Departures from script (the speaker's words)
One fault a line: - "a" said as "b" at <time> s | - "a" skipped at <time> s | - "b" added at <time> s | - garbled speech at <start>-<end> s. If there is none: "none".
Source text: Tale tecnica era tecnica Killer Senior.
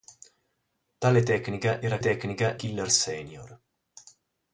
none